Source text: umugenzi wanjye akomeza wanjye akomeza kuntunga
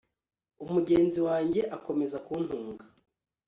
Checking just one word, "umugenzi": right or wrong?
right